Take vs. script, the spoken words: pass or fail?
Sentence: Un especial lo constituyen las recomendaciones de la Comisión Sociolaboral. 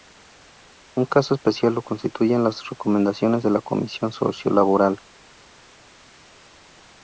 fail